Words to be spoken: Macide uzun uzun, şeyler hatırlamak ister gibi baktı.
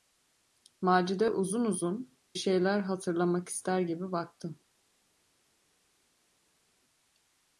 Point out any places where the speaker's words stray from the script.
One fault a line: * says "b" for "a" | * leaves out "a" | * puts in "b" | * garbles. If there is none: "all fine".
all fine